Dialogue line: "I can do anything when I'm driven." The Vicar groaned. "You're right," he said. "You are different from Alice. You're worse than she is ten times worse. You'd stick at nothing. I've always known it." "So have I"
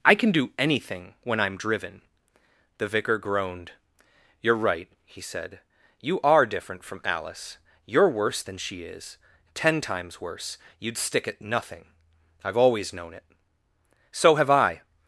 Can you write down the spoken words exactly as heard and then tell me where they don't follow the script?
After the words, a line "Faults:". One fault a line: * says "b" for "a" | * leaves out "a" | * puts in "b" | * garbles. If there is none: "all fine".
"I can do anything when I'm driven." The Vicar groaned. "You're right," he said. "You are different from Alice. You're worse than she is ten times worse. You'd stick at nothing. I've always known it." "So have I"
Faults:
all fine